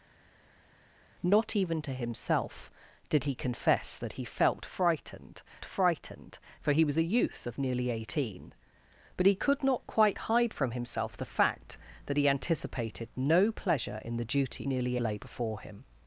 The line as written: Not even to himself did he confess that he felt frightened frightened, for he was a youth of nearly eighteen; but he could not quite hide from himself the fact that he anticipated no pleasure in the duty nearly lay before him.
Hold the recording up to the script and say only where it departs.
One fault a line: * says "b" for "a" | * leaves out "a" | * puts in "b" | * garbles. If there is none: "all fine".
all fine